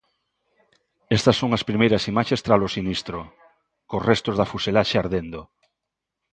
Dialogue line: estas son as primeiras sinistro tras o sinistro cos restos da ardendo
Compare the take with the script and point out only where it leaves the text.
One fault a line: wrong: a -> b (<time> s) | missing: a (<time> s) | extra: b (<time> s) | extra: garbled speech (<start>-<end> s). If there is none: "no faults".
wrong: sinistro -> imaxes (2.1 s)
extra: fuselaxe (4.5 s)